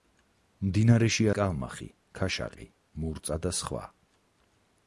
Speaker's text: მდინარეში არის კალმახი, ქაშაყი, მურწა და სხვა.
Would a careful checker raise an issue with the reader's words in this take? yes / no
yes